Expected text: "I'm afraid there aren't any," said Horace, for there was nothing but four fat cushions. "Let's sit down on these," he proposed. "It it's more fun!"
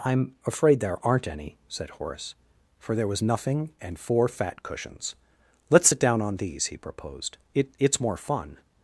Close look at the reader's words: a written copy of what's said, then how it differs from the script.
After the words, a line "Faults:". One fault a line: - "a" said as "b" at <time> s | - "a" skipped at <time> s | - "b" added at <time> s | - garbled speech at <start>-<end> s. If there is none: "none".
"I'm afraid there aren't any," said Horace, for there was nothing and four fat cushions. "Let's sit down on these," he proposed. "It it's more fun!"
Faults:
- "but" said as "and" at 3.8 s